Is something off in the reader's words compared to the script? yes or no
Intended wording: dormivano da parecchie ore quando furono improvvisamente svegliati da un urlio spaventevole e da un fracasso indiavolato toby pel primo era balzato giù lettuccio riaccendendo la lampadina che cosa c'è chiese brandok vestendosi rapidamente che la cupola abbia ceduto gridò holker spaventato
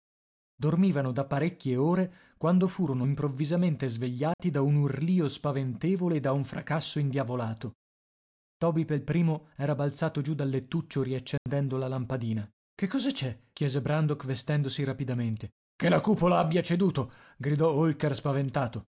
yes